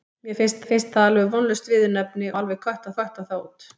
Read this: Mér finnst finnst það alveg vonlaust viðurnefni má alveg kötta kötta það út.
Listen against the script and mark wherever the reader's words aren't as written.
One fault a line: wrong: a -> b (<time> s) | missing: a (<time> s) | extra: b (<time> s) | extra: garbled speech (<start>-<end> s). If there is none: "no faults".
no faults